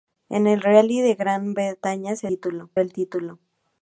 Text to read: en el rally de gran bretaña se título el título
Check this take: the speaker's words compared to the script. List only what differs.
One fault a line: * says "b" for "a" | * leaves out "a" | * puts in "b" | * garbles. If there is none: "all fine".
all fine